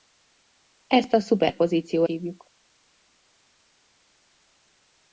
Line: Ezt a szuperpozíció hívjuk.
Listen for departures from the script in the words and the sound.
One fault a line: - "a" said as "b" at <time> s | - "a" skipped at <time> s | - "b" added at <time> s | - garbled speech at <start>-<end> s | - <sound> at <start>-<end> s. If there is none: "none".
none